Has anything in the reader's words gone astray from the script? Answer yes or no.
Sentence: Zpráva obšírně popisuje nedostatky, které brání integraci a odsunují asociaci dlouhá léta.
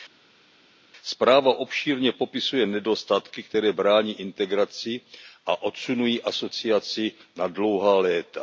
yes